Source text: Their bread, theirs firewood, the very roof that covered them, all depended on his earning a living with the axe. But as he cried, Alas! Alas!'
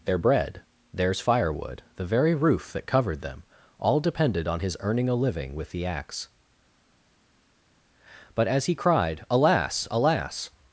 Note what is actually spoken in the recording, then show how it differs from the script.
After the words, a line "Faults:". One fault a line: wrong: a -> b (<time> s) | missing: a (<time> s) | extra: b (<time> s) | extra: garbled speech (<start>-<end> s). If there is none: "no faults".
Their bread, theirs firewood, the very roof that covered them, all depended on his earning a living with the axe. But as he cried, Alas! Alas!'
Faults:
no faults